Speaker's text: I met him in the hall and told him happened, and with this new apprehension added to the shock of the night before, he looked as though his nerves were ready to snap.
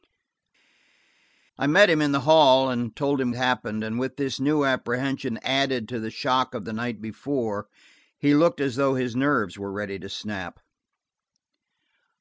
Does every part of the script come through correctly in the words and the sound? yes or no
yes